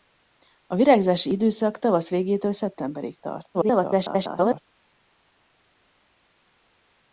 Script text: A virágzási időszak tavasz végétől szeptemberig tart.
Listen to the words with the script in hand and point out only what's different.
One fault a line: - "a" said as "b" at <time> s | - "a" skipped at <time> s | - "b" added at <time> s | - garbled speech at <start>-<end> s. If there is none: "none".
- garbled speech at 3.5-4.6 s